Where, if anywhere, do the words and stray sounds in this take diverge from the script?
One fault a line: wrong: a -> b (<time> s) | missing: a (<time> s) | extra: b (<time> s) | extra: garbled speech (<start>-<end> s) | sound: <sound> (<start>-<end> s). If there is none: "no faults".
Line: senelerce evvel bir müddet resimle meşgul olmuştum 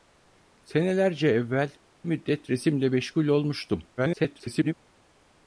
missing: bir (1.8 s)
extra: garbled speech (4.0-4.7 s)